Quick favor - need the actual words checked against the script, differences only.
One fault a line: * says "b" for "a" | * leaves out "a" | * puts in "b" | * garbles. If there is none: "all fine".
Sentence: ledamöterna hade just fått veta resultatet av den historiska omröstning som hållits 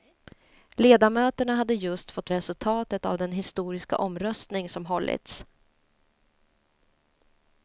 * leaves out "veta"